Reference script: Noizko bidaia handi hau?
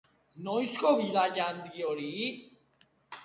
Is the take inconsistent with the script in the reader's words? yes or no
yes